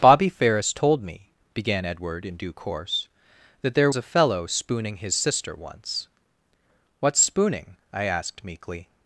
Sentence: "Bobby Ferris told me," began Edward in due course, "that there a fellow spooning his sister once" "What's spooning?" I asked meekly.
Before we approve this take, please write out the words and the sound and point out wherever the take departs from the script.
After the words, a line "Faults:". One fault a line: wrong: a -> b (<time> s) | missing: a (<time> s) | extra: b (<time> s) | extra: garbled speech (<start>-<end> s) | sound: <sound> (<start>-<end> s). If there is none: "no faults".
"Bobby Ferris told me," began Edward in due course, "that there a fellow spooning his sister once" "What's spooning?" I asked meekly.
Faults:
no faults